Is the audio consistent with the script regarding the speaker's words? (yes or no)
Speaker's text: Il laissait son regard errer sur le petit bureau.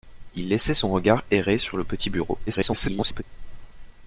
no